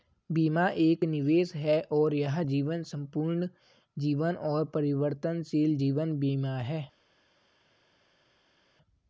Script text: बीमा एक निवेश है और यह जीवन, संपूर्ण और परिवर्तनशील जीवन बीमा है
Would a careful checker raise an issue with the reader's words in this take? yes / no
yes